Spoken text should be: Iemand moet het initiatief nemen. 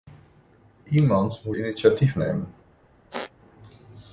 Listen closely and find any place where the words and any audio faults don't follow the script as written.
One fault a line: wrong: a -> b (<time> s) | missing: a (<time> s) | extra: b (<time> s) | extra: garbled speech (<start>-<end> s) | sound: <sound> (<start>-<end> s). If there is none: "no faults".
missing: het (1.6 s)
sound: squeak (3.1-3.3 s)